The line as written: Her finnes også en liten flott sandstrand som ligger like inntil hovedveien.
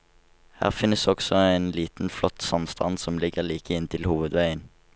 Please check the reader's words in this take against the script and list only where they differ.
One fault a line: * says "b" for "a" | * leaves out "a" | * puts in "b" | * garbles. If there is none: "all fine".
all fine